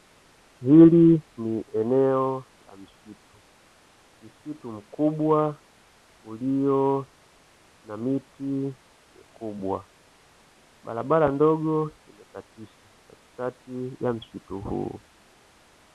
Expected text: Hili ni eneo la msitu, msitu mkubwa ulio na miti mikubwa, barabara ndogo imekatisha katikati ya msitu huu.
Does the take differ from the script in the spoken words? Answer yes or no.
no